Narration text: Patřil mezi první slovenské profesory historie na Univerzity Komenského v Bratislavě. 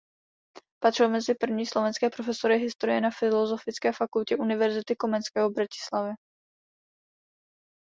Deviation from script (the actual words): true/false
true